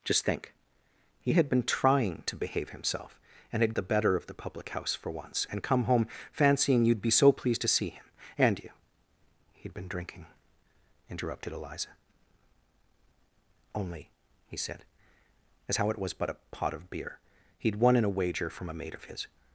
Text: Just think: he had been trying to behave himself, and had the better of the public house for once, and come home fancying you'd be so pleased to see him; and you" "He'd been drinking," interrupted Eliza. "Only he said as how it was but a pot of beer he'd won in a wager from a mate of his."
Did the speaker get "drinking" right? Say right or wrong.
right